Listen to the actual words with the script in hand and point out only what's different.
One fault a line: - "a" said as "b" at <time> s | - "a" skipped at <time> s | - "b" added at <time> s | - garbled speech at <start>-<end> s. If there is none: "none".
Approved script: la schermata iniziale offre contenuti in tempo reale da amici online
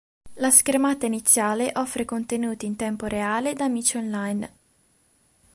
none